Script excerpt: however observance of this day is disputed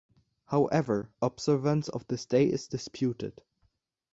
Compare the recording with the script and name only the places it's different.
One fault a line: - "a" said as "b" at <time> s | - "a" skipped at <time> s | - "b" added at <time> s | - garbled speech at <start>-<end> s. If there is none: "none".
none